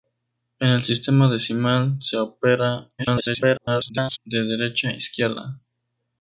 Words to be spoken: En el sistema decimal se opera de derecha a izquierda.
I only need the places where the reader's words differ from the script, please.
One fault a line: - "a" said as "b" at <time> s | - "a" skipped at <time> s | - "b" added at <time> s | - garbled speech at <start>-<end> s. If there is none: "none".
- garbled speech at 3.0-4.2 s